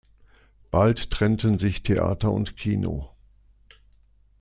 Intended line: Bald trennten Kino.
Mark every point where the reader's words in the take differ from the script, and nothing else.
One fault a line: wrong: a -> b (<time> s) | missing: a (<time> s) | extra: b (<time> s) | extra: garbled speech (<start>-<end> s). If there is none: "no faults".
extra: sich Theater und (1.6 s)